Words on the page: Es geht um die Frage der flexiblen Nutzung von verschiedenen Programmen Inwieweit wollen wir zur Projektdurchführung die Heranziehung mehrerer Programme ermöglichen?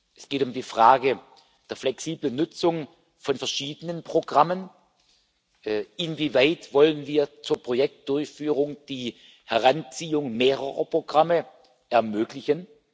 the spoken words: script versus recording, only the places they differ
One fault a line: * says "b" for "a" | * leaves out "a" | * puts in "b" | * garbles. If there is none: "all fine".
all fine